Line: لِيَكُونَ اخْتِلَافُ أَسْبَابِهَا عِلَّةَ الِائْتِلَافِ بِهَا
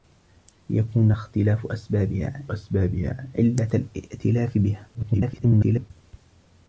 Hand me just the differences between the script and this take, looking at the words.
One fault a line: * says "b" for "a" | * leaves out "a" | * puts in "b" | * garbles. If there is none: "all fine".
* puts in "أَسْبَابِهَا"
* garbles